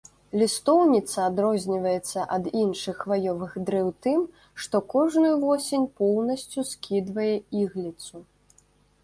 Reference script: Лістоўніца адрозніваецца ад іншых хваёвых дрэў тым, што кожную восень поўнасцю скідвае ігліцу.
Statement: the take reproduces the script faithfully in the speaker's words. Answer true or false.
true